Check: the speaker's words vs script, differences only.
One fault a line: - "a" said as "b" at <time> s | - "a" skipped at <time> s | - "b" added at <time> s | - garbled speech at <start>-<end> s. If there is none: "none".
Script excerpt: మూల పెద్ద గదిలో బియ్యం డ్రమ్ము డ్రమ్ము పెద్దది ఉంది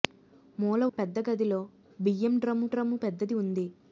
none